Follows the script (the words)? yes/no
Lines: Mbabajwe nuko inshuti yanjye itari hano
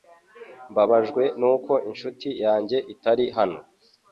yes